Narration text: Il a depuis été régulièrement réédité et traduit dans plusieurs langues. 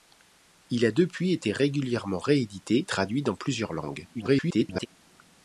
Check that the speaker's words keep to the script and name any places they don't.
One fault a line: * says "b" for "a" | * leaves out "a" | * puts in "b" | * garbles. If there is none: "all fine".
* leaves out "et"
* garbles